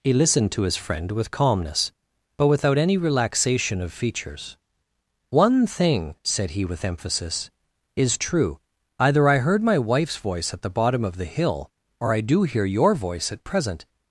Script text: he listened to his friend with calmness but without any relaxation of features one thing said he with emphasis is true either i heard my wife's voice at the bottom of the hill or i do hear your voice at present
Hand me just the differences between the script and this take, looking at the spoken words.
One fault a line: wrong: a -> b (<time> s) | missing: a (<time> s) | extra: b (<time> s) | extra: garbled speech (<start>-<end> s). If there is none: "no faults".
no faults